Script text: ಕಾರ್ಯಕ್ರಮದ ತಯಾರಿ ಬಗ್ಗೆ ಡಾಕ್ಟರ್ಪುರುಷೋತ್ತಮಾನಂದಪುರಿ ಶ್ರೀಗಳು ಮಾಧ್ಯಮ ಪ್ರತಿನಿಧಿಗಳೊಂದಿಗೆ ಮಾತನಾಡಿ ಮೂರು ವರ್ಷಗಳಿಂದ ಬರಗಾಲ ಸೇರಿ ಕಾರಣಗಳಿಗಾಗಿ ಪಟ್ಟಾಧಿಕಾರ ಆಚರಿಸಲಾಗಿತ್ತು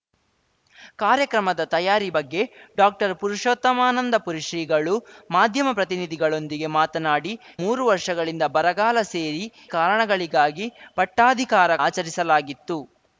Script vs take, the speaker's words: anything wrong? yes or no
no